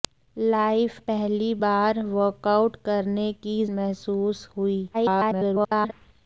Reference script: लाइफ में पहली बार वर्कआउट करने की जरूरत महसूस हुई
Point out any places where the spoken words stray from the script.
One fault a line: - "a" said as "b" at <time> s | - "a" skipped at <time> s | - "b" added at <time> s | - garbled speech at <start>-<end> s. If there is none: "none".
- "में" skipped at 1.0 s
- "जरूरत" skipped at 3.6 s
- garbled speech at 4.9-5.9 s